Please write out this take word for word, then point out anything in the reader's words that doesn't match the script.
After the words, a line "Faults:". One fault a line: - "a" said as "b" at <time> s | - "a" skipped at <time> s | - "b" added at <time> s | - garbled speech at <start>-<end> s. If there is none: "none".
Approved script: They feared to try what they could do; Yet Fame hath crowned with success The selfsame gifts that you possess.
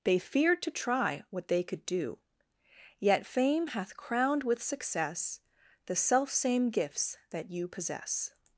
They feared to try what they could do; Yet Fame hath crowned with success The selfsame gifts that you possess.
Faults:
none